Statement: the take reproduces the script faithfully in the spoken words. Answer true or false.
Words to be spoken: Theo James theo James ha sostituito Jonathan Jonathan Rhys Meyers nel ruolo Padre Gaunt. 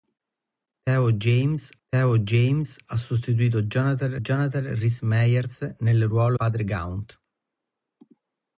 true